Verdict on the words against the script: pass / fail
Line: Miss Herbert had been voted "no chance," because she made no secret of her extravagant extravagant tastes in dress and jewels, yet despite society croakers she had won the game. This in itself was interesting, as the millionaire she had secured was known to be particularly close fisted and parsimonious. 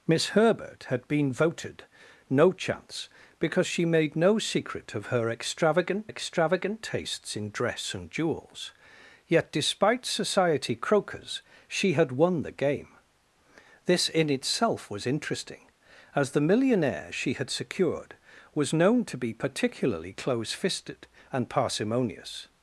pass